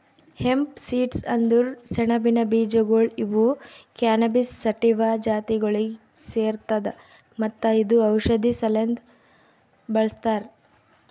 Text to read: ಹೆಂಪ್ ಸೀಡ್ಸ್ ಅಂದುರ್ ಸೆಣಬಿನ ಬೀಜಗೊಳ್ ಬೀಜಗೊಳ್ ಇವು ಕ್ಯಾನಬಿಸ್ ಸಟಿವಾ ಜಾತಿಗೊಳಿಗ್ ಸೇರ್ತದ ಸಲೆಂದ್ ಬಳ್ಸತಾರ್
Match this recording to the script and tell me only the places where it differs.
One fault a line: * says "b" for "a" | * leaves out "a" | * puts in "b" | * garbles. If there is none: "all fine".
* leaves out "ಬೀಜಗೊಳ್"
* puts in "ಮತ್ತ ಇದು ಔಷಧಿ"